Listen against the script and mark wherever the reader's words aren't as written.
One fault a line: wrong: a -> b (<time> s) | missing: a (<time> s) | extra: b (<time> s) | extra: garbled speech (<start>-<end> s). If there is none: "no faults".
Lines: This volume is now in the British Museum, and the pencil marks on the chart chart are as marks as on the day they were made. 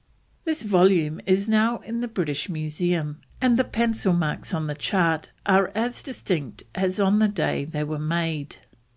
missing: chart (5.3 s)
wrong: marks -> distinct (6.0 s)